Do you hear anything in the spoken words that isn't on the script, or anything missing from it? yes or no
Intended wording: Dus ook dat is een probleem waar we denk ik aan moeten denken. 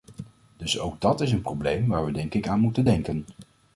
no